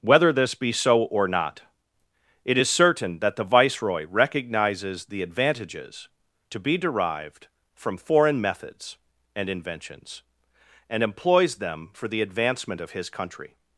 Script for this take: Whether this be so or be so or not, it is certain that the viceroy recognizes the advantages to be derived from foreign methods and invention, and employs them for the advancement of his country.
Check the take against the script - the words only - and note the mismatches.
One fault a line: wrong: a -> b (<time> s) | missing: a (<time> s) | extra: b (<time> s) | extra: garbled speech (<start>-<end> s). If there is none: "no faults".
missing: be so or (1.3 s)
wrong: invention -> inventions (9.5 s)